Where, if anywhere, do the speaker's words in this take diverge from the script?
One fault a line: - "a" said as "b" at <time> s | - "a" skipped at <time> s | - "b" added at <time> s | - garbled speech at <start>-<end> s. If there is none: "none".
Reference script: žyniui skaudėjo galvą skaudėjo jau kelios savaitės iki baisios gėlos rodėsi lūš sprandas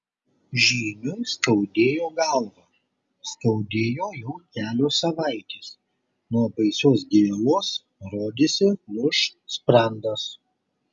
- "iki" said as "nuo" at 6.4 s